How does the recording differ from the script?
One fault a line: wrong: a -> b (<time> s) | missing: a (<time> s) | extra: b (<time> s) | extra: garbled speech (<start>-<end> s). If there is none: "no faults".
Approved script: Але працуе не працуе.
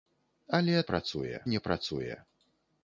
no faults